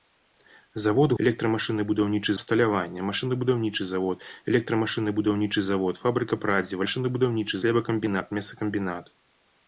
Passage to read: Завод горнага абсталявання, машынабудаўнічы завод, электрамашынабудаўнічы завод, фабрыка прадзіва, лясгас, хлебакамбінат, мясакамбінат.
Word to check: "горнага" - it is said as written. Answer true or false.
false